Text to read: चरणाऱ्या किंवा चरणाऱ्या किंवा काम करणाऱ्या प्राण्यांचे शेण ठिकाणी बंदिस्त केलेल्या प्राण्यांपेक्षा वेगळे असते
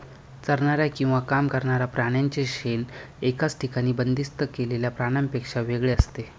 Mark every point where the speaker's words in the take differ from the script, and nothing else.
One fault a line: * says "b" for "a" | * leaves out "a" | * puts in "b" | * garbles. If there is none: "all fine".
* leaves out "चरणाऱ्या किंवा"
* puts in "एकाच"